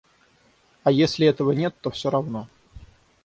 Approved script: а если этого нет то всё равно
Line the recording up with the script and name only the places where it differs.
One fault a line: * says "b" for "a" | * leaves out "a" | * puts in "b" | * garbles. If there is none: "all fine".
all fine